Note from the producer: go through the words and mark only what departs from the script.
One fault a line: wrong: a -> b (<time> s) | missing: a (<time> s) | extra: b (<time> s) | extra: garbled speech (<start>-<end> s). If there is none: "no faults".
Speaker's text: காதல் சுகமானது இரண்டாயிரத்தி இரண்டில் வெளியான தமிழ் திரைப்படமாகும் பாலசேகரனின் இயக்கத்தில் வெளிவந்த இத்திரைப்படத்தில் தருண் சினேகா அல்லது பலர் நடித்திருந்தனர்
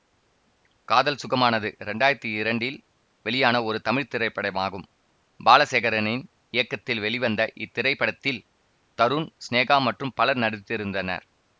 extra: ஒரு (3.6 s)
wrong: அல்லது -> மற்றும் (9.9 s)